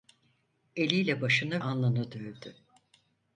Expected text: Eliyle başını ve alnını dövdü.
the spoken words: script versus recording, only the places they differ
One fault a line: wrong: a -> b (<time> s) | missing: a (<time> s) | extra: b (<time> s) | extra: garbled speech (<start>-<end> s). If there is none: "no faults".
missing: ve (1.6 s)